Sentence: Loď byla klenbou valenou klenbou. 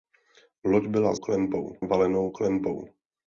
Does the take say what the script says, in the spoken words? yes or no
yes